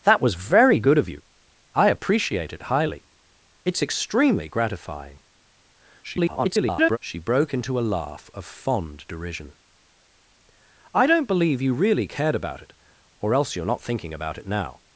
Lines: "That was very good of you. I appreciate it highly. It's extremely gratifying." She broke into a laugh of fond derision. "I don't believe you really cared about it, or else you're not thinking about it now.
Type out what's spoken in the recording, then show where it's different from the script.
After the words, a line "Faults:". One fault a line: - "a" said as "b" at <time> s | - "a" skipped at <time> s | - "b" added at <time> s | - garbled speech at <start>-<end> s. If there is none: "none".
"That was very good of you. I appreciate it highly. It's extremely gratifying." [garbled] She broke into a laugh of fond derision. "I don't believe you really cared about it, or else you're not thinking about it now.
Faults:
- garbled speech at 6.0-7.0 s